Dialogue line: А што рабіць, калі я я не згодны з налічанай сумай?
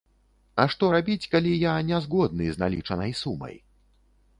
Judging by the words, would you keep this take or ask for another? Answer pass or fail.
fail